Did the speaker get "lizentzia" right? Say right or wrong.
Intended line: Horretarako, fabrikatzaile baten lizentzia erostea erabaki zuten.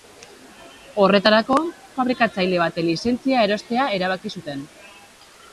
right